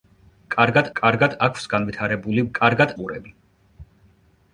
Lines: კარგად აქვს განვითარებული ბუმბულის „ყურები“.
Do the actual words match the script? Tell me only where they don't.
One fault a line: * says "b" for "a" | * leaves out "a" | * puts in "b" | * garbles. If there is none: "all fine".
* puts in "კარგად"
* says "კარგად" for "ბუმბულის"